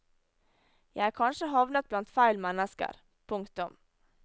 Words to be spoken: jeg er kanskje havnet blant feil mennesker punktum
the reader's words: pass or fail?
pass